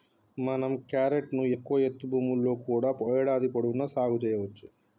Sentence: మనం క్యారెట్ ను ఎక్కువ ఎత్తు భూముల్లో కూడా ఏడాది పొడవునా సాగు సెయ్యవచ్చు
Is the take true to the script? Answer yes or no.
yes